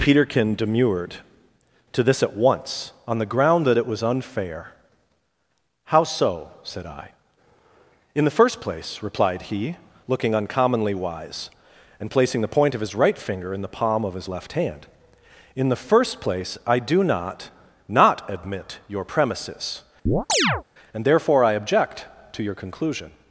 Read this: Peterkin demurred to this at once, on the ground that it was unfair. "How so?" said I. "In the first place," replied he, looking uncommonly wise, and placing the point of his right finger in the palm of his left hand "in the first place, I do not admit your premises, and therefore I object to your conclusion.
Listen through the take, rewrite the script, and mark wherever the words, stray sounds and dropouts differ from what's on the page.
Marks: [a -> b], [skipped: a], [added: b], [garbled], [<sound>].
Peterkin demurred to this at once, on the ground that it was unfair. "How so?" said I. "In the first place," replied he, looking uncommonly wise, and placing the point of his right finger in the palm of his left hand "in the first place, I do not [added: not] admit your premises, [chirp] and therefore I object to your conclusion.